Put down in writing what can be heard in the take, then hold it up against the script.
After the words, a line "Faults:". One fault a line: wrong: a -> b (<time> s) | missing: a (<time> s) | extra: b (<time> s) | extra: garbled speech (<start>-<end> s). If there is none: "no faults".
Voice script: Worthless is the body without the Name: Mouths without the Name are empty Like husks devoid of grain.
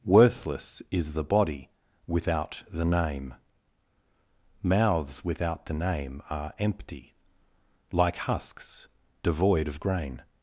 Worthless is the body without the Name: Mouths without the Name are empty Like husks devoid of grain.
Faults:
no faults